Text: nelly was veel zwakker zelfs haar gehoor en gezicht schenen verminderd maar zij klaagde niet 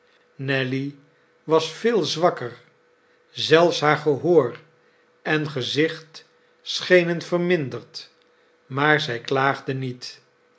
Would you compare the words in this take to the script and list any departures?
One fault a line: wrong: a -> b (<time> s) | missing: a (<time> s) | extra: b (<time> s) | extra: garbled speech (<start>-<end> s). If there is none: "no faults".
no faults